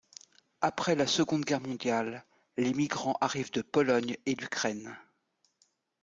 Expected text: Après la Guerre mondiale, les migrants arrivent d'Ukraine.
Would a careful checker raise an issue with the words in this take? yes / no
yes